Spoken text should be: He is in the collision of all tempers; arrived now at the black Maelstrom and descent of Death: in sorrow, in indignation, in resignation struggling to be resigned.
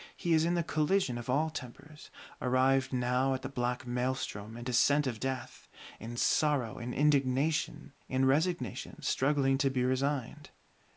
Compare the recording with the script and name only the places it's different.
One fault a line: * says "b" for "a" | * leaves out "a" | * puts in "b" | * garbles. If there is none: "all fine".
all fine